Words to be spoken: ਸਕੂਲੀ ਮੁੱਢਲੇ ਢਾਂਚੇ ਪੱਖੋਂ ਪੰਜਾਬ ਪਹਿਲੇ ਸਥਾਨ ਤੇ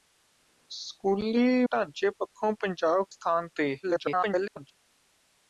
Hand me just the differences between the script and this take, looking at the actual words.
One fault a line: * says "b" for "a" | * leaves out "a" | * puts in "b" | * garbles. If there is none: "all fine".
* leaves out "ਮੁੱਢਲੇ"
* leaves out "ਪਹਿਲੇ"
* garbles